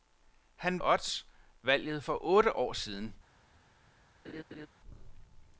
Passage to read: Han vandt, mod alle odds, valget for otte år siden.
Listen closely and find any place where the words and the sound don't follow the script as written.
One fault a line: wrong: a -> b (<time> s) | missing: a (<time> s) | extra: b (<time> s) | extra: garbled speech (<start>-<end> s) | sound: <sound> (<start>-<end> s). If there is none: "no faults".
missing: vandt mod alle (0.8 s)
sound: laugh (4.2-4.7 s)